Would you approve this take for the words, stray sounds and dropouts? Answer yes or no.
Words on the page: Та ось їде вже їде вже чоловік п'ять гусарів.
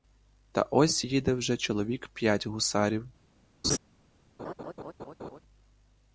no